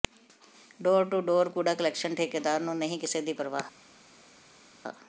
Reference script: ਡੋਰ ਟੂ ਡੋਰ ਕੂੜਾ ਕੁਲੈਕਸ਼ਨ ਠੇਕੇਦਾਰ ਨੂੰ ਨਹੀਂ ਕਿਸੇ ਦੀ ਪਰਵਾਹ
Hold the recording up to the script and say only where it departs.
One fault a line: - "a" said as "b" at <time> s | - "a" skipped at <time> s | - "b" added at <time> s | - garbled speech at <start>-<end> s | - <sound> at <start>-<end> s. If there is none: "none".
none